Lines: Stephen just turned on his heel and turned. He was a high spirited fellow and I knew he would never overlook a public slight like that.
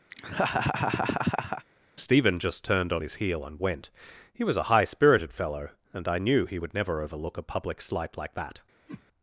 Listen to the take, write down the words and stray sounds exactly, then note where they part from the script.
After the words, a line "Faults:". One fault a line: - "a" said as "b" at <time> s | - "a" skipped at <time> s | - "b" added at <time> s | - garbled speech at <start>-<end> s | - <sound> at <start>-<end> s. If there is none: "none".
Stephen just turned on his heel and went. He was a high spirited fellow and I knew he would never overlook a public slight like that.
Faults:
- laugh at 0.1-1.7 s
- "turned" said as "went" at 3.6 s
- whoosh at 8.9-9.0 s